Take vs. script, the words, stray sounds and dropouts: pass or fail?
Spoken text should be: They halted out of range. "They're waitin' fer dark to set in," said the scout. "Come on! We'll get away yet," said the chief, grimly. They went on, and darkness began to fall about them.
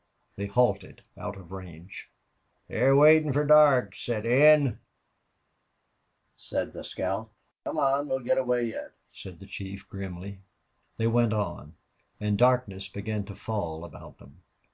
pass